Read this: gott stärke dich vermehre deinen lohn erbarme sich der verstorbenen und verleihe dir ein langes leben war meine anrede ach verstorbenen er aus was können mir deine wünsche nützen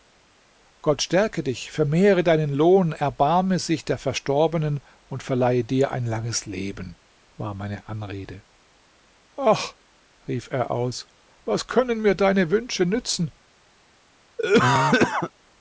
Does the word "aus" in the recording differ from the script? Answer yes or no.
no